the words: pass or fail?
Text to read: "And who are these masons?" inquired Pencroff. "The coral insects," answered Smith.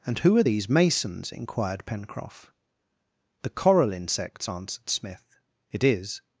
fail